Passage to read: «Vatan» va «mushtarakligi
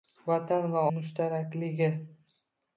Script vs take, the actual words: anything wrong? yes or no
no